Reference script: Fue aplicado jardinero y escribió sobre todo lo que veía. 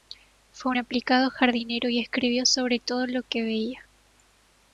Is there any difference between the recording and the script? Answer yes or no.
no